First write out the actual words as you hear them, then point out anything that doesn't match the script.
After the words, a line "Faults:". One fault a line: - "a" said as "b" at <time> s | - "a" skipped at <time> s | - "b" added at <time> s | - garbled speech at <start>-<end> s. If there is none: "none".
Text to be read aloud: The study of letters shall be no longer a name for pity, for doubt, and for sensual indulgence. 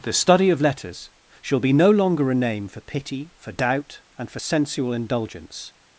The study of letters shall be no longer a name for pity, for doubt, and for sensual indulgence.
Faults:
none